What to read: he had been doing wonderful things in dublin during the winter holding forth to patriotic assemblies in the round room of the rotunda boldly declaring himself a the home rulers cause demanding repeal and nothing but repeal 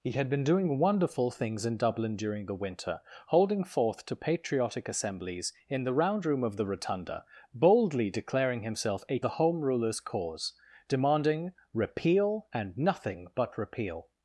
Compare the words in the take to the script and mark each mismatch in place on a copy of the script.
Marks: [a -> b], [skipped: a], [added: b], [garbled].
he had been doing wonderful things in dublin during the winter holding forth to patriotic assemblies in the round room of the rotunda boldly declaring himself a the home rulers cause demanding repeal and nothing but repeal